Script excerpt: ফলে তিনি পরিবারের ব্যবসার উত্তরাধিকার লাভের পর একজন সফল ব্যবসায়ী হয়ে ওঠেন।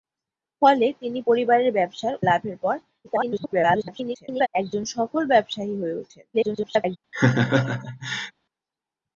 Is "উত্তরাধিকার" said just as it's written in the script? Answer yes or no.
no